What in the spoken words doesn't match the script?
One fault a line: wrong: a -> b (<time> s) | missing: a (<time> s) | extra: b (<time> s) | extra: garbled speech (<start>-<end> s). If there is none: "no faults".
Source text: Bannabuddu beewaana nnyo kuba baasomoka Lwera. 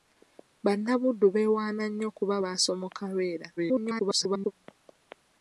extra: garbled speech (3.6-4.5 s)